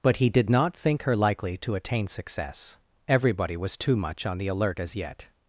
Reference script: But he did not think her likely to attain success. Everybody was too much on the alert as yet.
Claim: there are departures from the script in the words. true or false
false